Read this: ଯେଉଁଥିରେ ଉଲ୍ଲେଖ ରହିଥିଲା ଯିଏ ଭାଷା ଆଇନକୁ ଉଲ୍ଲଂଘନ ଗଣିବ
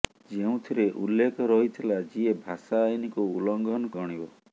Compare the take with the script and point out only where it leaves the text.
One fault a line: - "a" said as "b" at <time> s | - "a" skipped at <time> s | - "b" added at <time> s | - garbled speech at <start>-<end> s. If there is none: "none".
none